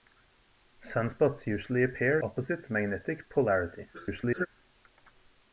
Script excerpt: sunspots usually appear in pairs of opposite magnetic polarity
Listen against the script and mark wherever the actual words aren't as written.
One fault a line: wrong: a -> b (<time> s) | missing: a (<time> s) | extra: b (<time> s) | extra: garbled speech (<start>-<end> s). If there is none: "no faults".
missing: in pairs of (2.2 s)
extra: garbled speech (3.9-4.5 s)